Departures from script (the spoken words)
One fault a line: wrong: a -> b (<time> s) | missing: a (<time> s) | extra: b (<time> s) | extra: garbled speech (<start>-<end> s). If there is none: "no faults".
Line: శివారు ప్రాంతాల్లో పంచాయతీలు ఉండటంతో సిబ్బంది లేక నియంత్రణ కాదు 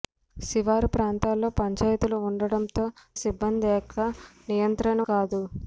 no faults